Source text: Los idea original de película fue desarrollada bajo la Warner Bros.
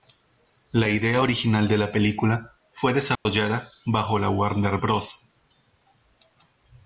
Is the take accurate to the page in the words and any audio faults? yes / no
no